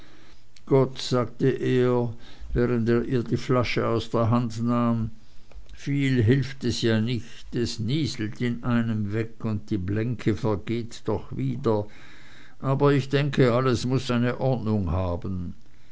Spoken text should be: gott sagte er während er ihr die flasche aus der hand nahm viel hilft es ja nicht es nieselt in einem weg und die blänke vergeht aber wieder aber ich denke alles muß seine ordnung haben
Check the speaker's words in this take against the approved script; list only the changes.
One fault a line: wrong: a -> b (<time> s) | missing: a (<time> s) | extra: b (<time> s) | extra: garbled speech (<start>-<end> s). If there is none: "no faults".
wrong: aber -> doch (11.1 s)